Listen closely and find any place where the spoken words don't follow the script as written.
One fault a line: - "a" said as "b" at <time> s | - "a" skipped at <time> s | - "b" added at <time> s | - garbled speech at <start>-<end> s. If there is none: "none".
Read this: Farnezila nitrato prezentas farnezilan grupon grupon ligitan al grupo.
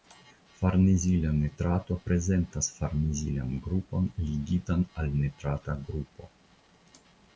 - "grupon" skipped at 4.1 s
- "nitrata" added at 5.3 s